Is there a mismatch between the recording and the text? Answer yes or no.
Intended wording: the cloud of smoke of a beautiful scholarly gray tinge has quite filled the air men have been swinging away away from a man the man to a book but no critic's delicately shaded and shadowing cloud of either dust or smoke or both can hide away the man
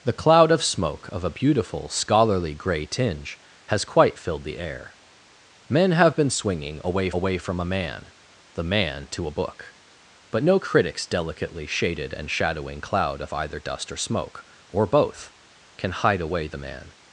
no